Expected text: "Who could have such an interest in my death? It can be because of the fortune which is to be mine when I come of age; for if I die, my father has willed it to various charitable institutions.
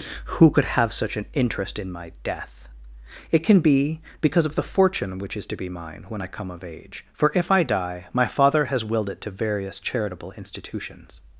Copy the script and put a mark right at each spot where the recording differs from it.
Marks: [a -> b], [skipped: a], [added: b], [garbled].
"Who could have such an interest in my death? It can be because of the fortune which is to be mine when I come of age; for if I die, my father has willed it to various charitable institutions.